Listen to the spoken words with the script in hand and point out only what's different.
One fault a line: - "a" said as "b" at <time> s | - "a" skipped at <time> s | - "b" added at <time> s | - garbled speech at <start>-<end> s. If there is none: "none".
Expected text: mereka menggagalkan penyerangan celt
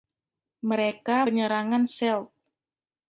- "menggagalkan" skipped at 1.3 s